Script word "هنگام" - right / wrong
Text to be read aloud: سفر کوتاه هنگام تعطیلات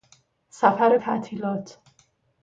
wrong